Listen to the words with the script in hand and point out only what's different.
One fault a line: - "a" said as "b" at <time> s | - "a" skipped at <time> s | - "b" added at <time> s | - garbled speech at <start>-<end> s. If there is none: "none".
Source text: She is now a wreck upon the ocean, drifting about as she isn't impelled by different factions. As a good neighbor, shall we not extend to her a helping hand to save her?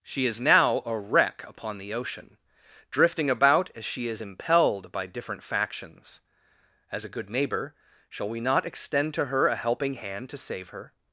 - "isn't" said as "is" at 4.1 s